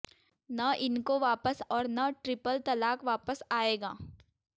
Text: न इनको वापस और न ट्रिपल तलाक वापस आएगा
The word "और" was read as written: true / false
true